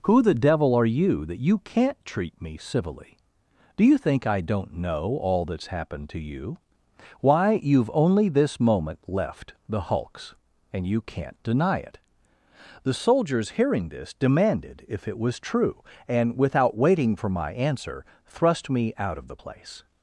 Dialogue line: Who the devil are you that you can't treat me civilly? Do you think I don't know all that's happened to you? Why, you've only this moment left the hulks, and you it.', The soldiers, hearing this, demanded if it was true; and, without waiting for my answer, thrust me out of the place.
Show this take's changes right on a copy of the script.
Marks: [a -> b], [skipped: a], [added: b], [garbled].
Who the devil are you that you can't treat me civilly? Do you think I don't know all that's happened to you? Why, you've only this moment left the hulks, and you [added: can't deny] it.', The soldiers, hearing this, demanded if it was true; and, without waiting for my answer, thrust me out of the place.